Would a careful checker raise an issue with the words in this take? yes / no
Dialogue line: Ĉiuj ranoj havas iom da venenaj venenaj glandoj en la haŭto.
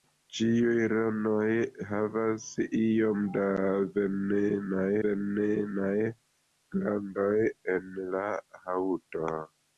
no